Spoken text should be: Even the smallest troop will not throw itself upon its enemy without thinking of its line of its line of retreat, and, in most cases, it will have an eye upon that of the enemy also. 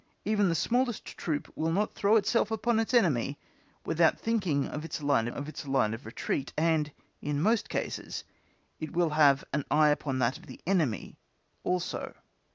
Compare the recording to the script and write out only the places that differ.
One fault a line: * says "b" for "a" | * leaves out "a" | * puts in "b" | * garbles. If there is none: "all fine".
all fine